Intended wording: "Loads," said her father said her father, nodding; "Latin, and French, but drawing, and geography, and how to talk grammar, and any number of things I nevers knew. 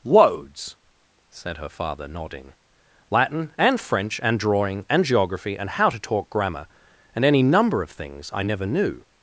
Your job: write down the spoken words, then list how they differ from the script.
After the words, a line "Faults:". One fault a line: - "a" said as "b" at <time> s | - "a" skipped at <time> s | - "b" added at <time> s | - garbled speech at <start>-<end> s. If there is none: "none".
"Loads," said her father, nodding; "Latin, and French, and drawing, and geography, and how to talk grammar, and any number of things I never knew.
Faults:
- "said her father" skipped at 2.1 s
- "but" said as "and" at 4.2 s
- "nevers" said as "never" at 8.4 s